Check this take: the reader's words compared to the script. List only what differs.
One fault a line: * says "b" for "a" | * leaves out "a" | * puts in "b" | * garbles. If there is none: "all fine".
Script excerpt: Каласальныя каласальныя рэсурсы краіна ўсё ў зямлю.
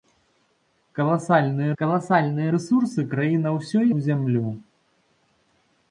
all fine